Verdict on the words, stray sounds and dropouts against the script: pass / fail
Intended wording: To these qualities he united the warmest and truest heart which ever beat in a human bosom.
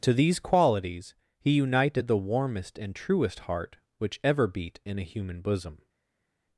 pass